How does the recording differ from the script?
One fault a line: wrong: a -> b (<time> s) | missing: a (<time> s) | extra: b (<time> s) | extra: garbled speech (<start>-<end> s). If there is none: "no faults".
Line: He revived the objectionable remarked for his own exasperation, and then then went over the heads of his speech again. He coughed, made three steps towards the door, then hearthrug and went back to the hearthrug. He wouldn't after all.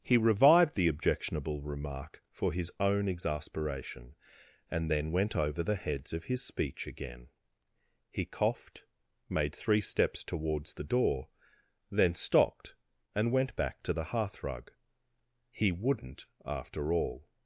wrong: remarked -> remark (1.6 s)
missing: then (5.1 s)
wrong: hearthrug -> stopped (12.2 s)